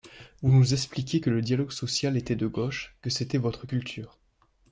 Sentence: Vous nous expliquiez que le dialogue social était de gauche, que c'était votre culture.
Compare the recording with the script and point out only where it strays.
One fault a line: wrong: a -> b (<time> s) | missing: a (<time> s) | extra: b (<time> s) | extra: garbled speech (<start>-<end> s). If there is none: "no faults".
no faults